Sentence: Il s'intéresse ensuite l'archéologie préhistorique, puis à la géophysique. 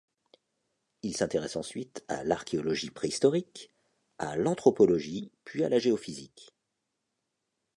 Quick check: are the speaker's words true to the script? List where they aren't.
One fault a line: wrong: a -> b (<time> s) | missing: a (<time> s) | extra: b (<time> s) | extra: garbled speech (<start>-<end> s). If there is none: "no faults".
extra: à (2.1 s)
extra: à l'anthropologie (4.2 s)